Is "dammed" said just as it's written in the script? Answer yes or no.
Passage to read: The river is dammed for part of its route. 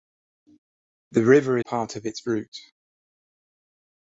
no